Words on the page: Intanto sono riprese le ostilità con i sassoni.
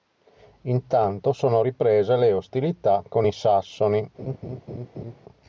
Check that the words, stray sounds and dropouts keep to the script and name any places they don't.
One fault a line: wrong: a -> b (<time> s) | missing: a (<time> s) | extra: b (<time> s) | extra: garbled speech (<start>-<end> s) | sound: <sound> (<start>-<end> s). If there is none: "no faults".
sound: laugh (4.2-5.2 s)